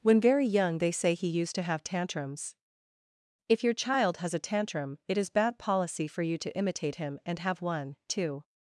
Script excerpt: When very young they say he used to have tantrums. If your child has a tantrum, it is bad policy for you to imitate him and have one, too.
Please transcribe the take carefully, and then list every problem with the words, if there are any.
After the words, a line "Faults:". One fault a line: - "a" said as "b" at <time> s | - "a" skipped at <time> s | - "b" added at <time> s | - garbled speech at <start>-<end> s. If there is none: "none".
When very young they say he used to have tantrums. If your child has a tantrum, it is bad policy for you to imitate him and have one, too.
Faults:
none